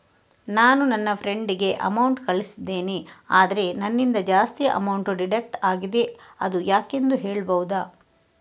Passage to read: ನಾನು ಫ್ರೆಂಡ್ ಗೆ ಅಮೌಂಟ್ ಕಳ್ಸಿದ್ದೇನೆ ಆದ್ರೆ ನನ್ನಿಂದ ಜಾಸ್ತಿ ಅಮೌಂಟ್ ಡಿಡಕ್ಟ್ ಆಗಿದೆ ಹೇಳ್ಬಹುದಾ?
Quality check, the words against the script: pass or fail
fail